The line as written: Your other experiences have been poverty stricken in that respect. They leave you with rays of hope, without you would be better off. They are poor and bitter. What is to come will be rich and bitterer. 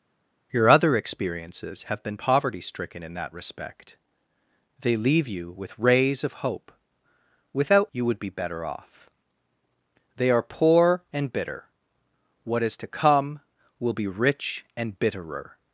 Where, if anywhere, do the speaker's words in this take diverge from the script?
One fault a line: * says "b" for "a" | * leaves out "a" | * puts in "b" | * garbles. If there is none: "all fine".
all fine